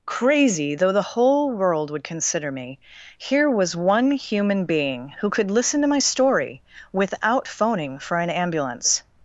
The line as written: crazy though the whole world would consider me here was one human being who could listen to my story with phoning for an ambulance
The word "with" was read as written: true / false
false